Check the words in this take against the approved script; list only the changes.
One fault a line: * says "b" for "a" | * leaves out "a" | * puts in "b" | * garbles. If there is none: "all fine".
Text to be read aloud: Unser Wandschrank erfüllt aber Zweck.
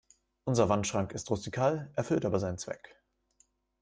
* puts in "ist rustikal"
* puts in "seinen"